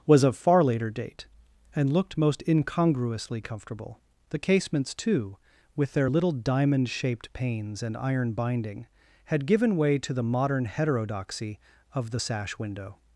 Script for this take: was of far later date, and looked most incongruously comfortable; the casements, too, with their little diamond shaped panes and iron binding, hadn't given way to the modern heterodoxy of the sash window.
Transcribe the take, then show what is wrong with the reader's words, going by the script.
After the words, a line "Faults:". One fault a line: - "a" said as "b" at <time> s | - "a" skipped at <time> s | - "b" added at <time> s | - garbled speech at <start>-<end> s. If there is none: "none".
was of far later date, and looked most incongruously comfortable; the casements, too, with their little diamond shaped panes and iron binding, had given way to the modern heterodoxy of the sash window.
Faults:
- "hadn't" said as "had" at 9.2 s